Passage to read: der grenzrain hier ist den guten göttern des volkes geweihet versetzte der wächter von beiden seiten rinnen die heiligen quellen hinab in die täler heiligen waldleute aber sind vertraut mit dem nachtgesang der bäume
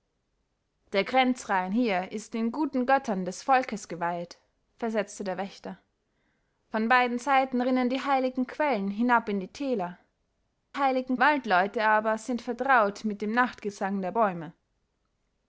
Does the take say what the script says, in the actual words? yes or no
yes